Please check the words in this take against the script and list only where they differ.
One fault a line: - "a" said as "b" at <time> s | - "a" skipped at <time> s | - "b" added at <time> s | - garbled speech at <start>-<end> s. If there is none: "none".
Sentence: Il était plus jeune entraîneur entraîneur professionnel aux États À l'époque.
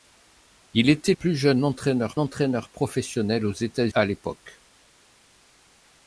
none